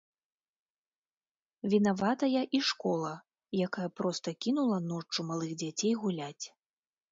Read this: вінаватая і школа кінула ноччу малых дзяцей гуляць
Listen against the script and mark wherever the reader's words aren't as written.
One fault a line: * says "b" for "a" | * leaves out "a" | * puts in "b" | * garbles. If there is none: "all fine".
* puts in "якая проста"